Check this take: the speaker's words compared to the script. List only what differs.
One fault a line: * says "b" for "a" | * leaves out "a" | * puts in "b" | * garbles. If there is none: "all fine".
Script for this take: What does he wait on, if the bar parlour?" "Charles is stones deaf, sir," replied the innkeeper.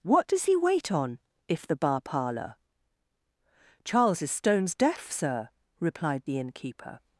all fine